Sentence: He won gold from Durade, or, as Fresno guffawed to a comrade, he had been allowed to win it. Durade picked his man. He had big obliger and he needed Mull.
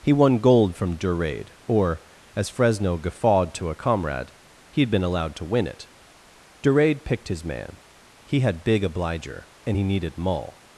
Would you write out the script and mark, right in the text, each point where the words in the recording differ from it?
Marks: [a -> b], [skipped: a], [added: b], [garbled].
He won gold from Durade, or, as Fresno guffawed to a comrade, he had been allowed to win it. Durade picked his man. He had big obliger and he needed Mull.